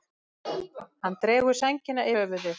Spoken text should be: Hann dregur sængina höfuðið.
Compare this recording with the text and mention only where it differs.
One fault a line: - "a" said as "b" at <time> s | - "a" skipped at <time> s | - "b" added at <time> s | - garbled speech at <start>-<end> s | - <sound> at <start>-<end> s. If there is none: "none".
none